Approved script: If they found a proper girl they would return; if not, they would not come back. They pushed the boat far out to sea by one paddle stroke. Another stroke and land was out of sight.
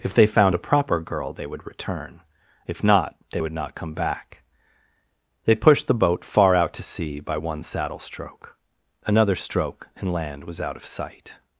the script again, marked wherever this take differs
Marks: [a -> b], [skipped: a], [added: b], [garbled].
If they found a proper girl they would return; if not, they would not come back. They pushed the boat far out to sea by one [paddle -> saddle] stroke. Another stroke and land was out of sight.